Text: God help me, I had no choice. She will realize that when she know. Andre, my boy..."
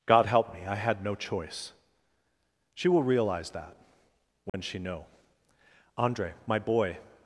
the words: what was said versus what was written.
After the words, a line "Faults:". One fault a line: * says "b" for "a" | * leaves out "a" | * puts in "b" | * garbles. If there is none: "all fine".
God help me, I had no choice. She will realize that when she know. Andre, my boy..."
Faults:
all fine